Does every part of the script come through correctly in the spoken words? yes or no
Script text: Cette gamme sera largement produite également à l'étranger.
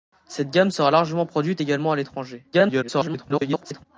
no